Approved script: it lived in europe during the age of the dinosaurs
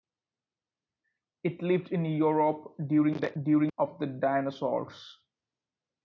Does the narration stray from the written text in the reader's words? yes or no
yes